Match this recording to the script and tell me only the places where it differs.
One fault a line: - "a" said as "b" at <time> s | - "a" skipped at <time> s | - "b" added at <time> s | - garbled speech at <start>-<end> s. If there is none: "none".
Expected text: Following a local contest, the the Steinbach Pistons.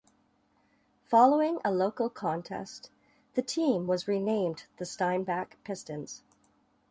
- "team was renamed" added at 3.4 s